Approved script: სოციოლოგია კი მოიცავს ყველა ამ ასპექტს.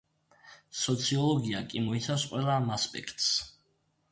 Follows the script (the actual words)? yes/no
yes